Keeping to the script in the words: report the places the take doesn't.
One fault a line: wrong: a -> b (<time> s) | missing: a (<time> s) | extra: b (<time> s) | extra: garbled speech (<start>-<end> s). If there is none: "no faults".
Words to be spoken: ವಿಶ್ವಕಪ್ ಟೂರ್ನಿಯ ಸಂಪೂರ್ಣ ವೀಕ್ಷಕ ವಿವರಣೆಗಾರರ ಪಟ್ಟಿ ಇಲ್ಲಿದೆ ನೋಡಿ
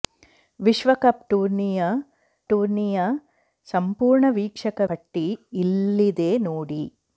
extra: ಟೂರ್ನಿಯ (2.5 s)
missing: ವಿವರಣೆಗಾರರ (4.8 s)